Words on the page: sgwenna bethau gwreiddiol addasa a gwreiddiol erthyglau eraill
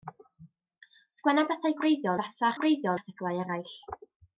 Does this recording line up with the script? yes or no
yes